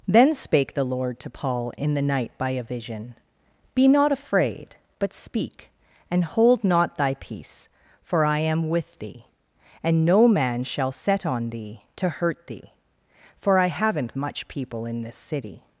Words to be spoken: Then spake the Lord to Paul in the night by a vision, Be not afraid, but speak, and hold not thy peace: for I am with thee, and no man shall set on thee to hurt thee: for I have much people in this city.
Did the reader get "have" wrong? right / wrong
wrong